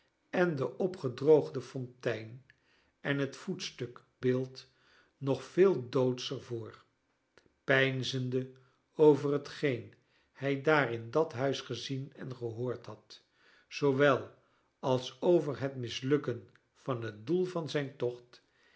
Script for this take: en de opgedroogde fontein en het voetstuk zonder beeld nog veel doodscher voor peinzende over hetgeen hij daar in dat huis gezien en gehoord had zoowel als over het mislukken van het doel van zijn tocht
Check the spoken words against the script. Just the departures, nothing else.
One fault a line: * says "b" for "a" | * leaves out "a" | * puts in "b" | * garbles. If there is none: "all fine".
* leaves out "zonder"